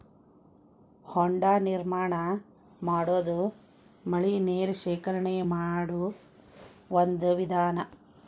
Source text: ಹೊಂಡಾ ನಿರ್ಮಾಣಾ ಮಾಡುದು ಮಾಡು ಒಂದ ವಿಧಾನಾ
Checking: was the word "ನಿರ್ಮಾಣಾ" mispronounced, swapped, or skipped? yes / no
no